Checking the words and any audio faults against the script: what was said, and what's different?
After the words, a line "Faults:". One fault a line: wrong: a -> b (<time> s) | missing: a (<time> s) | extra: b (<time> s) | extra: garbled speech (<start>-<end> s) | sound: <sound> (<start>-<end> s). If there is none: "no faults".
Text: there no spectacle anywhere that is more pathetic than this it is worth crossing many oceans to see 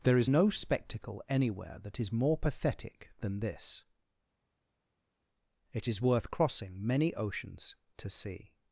there is no spectacle anywhere that is more pathetic than this it is worth crossing many oceans to see
Faults:
extra: is (0.2 s)